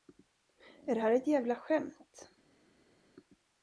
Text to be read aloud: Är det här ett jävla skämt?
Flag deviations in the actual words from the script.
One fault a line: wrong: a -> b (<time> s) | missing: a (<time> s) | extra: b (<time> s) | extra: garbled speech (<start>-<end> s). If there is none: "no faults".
no faults